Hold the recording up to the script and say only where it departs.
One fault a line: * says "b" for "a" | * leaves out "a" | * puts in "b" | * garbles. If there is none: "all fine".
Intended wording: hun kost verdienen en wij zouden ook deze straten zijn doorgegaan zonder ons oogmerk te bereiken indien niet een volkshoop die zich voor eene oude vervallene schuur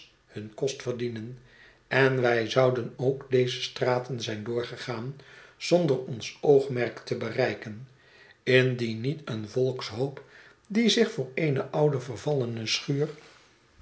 all fine